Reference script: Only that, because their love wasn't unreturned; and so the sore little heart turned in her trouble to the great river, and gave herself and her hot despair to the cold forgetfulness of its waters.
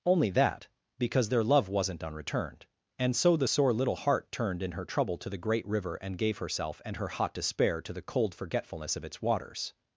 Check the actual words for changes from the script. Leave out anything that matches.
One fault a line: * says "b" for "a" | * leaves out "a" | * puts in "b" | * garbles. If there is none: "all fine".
all fine